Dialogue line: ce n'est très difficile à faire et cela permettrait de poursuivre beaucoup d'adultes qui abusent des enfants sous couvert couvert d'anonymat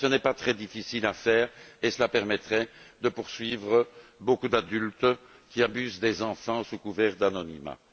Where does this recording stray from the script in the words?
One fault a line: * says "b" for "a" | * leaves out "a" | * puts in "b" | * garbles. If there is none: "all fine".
* puts in "pas"
* leaves out "couvert"